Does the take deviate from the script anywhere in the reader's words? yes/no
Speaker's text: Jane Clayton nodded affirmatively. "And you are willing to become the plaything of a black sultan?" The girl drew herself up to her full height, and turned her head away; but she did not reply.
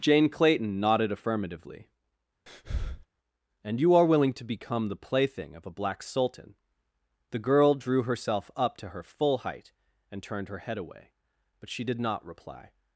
no